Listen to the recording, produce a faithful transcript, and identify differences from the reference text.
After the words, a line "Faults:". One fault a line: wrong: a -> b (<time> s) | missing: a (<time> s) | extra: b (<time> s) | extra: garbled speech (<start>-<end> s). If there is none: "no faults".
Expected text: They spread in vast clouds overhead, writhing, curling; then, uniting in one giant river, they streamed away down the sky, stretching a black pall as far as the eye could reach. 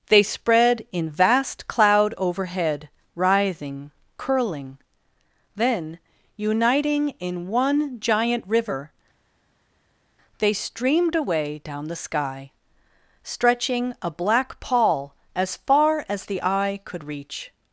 They spread in vast cloud overhead, writhing, curling; then, uniting in one giant river, they streamed away down the sky, stretching a black pall as far as the eye could reach.
Faults:
wrong: clouds -> cloud (1.7 s)